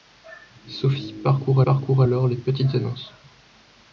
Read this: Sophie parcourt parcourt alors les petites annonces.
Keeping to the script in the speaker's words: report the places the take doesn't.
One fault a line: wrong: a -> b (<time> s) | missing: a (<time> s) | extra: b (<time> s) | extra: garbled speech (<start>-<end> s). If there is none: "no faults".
no faults